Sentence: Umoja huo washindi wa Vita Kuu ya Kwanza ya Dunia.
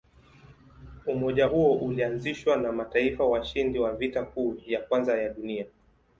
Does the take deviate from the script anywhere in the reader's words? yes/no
yes